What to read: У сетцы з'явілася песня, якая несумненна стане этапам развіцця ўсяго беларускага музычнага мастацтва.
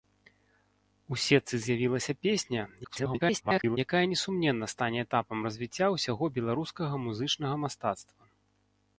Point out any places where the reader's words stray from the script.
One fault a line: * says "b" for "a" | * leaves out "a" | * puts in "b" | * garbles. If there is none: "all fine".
* garbles